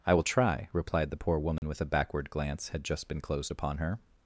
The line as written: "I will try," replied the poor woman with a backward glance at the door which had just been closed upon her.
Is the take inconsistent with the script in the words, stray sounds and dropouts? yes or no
yes